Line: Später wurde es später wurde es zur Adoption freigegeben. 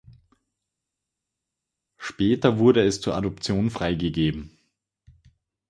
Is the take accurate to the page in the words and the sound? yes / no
no